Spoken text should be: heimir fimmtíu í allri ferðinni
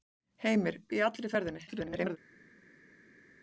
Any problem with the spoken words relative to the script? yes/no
yes